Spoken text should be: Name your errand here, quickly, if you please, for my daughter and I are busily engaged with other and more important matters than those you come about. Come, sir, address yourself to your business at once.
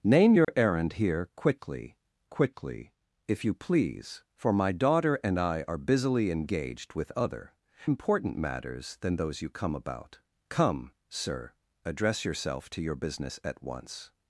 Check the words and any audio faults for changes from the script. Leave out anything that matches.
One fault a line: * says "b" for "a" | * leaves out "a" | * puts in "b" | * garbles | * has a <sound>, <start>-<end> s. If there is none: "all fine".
* has a dropout, 0.4-0.5 s
* puts in "quickly"
* leaves out "and more"